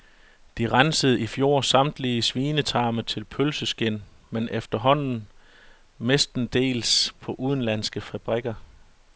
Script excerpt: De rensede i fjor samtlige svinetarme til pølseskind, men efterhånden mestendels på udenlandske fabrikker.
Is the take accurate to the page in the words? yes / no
yes